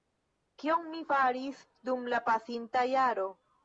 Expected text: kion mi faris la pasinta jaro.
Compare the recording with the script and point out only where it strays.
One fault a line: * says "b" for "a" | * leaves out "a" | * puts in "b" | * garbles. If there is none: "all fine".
* puts in "dum"